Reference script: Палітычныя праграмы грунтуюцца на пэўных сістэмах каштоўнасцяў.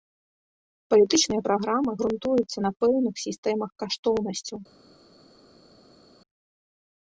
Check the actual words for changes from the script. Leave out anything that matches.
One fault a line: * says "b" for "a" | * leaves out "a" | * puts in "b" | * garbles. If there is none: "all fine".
all fine